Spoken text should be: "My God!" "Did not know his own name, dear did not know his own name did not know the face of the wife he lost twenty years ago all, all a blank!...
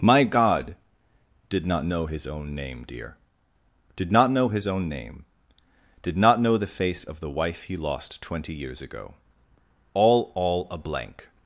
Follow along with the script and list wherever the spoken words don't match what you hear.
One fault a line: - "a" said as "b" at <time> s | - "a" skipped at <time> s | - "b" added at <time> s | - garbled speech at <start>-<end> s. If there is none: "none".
none